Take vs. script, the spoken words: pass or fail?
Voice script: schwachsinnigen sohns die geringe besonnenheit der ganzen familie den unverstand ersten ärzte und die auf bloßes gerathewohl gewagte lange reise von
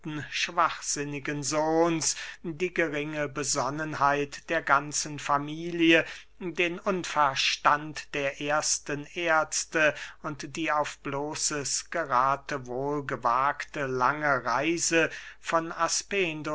fail